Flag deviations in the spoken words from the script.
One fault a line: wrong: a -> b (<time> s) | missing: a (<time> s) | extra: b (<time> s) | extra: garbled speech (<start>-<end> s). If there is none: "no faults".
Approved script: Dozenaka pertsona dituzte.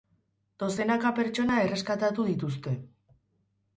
extra: erreskatatu (1.7 s)